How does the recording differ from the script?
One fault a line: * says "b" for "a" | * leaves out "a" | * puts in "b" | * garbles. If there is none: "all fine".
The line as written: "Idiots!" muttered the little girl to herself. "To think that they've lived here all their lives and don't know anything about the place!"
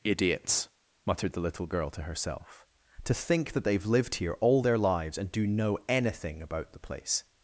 * says "do" for "don't"